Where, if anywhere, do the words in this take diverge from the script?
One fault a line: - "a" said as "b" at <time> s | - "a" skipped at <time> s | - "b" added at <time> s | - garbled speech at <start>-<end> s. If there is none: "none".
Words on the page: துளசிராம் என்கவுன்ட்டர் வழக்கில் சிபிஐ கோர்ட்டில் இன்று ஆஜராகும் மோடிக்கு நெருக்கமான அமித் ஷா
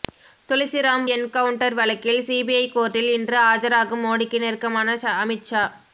none